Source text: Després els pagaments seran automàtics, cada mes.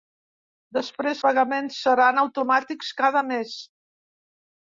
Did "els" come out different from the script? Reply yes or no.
yes